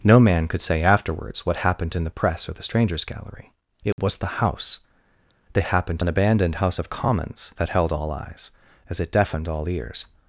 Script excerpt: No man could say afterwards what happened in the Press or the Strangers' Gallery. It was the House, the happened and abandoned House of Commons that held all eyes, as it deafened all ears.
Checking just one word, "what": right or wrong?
right